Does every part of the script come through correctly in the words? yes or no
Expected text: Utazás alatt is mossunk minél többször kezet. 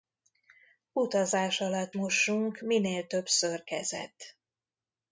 no